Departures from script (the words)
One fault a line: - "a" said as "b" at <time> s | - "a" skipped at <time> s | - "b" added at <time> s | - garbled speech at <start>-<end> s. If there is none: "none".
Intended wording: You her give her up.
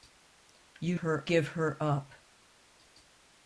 none